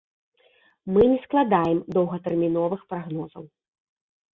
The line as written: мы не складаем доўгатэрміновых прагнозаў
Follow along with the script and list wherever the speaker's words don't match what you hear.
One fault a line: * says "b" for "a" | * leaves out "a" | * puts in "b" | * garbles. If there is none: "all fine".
all fine